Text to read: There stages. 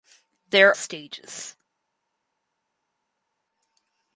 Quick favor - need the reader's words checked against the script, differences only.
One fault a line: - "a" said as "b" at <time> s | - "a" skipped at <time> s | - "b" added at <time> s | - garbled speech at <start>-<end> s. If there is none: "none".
none